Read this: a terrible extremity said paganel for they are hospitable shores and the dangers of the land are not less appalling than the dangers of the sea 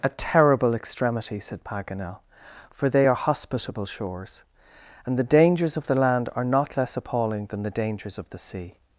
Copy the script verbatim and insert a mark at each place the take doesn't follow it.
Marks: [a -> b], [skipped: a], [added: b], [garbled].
a terrible extremity said paganel for they are hospitable shores and the dangers of the land are not less appalling than the dangers of the sea